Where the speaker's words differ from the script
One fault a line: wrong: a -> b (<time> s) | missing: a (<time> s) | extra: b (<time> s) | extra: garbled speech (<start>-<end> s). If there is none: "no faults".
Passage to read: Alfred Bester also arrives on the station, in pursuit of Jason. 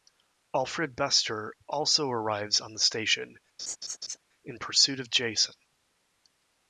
no faults